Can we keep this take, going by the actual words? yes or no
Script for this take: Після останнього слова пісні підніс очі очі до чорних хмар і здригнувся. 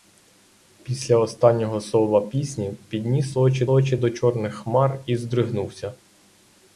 yes